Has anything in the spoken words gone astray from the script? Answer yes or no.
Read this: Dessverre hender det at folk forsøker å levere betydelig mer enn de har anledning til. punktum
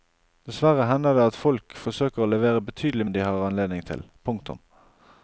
yes